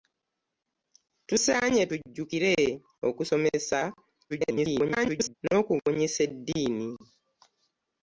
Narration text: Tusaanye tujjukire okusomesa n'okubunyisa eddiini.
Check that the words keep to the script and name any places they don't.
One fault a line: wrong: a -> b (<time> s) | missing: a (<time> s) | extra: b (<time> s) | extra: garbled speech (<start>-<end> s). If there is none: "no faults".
extra: garbled speech (4.3-5.4 s)